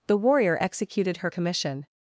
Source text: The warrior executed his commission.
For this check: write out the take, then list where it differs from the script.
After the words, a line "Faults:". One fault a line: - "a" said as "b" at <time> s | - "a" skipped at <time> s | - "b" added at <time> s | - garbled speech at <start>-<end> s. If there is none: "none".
The warrior executed her commission.
Faults:
- "his" said as "her" at 1.2 s